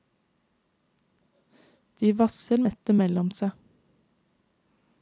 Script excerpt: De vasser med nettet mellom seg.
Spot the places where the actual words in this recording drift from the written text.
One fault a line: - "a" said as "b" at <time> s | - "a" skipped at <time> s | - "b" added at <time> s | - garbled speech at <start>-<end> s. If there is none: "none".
- "med" skipped at 2.6 s